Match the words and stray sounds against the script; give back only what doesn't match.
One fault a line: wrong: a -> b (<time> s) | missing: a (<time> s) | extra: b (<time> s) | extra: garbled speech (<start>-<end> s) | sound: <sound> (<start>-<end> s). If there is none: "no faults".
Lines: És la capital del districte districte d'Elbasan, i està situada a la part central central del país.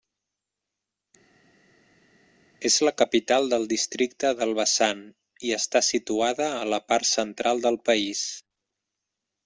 missing: districte (4.3 s)
missing: central (7.7 s)